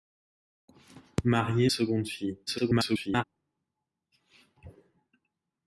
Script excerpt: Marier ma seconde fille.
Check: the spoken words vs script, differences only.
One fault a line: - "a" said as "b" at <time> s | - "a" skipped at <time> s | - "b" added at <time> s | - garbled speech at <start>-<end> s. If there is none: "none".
- "ma" skipped at 1.7 s
- garbled speech at 2.5-3.2 s